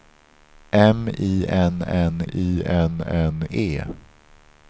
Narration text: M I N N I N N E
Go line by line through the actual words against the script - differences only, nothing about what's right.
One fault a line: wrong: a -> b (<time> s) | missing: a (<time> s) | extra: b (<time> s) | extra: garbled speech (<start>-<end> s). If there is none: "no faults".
no faults